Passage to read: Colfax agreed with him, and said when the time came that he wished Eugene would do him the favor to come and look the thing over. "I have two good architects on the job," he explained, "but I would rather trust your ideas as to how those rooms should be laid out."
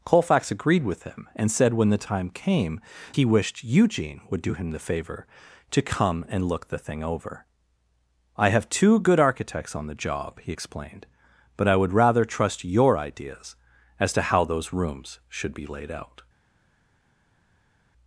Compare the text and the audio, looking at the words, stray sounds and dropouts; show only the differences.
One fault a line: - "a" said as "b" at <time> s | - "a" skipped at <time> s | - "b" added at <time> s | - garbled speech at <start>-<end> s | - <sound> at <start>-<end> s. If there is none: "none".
- "that" skipped at 2.8 s